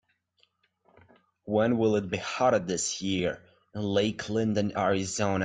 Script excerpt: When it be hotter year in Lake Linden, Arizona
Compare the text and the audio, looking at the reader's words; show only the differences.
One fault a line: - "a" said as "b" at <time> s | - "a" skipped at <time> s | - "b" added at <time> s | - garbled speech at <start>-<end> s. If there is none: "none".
- "will" added at 1.8 s
- "this" added at 2.6 s